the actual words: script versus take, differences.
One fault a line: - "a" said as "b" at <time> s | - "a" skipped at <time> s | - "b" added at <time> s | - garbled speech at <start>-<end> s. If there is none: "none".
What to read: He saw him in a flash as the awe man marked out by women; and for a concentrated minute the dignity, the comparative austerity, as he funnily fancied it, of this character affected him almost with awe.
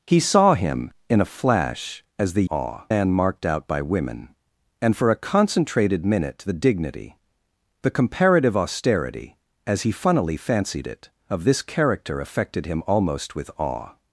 none